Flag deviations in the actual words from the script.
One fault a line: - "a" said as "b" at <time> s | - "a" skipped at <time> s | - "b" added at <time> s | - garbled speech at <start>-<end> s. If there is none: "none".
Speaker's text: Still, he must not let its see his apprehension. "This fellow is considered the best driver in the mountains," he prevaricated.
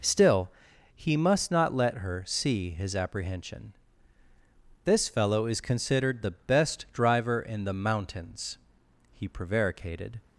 - "its" said as "her" at 2.0 s